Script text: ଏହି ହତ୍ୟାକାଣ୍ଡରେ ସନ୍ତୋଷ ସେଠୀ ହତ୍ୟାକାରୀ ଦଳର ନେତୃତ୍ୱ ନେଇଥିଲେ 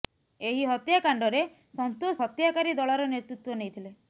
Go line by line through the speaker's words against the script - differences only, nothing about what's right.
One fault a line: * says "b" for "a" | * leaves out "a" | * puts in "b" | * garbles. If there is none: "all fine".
* leaves out "ସେଠୀ"